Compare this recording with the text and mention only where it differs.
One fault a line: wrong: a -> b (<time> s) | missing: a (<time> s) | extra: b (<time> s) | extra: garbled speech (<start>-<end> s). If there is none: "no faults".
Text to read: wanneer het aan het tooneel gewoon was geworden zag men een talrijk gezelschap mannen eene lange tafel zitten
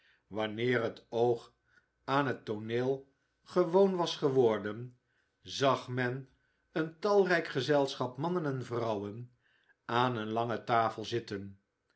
extra: oog (1.1 s)
extra: en vrouwen aan (8.4 s)